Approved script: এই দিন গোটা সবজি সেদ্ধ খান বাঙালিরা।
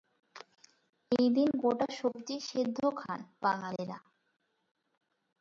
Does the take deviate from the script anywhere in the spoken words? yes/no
no